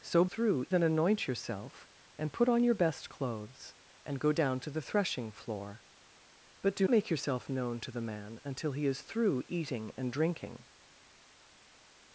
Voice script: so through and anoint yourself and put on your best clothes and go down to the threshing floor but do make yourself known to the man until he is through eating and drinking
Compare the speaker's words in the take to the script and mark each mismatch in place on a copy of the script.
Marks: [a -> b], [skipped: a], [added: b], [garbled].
so through and anoint yourself and put on your best clothes and go down to the threshing floor but do make yourself known to the man until he is through eating and drinking